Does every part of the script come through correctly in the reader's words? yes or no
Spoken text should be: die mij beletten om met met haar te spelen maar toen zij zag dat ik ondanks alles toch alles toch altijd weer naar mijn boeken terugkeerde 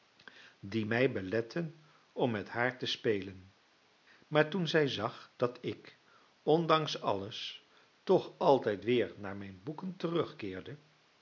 no